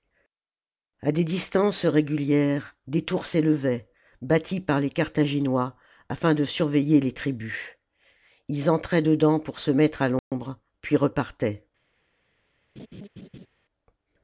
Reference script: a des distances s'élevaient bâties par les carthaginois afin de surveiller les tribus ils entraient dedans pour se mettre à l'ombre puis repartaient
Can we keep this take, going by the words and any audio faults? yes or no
no